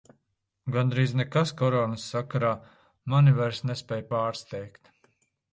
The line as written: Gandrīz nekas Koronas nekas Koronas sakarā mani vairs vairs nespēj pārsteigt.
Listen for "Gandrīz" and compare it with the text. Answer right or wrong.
right